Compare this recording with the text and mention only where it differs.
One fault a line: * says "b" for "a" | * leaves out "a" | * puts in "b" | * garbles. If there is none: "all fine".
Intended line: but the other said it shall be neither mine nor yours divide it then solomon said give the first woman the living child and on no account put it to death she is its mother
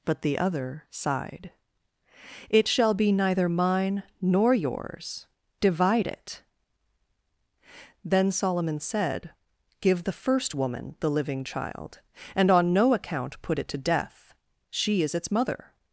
* says "sighed" for "said"